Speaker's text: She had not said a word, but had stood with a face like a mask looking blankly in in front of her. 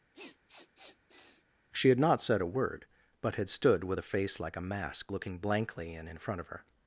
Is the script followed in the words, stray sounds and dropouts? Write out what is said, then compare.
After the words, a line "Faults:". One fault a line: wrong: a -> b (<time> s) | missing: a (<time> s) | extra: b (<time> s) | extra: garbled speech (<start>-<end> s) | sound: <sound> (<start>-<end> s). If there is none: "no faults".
She had not said a word, but had stood with a face like a mask looking blankly in in front of her.
Faults:
sound: sniff (0.1-1.4 s)